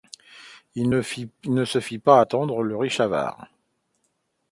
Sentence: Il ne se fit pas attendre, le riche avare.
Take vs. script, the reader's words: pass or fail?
pass